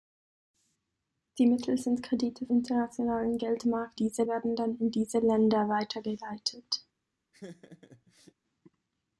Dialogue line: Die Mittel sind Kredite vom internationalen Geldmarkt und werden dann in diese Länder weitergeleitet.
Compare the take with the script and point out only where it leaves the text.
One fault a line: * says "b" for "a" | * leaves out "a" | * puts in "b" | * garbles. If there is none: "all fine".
* leaves out "vom"
* says "diese" for "und"